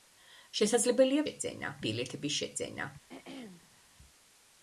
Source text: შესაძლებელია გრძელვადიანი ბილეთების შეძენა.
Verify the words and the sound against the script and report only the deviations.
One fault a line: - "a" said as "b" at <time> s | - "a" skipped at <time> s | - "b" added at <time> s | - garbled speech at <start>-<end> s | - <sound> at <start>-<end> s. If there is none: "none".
- "გრძელვადიანი" said as "შეძენა" at 1.3 s
- throat clearing at 3.1-3.8 s